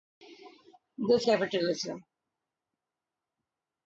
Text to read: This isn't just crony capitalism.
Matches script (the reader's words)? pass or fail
fail